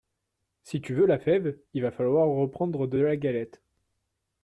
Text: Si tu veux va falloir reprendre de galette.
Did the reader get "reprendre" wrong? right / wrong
right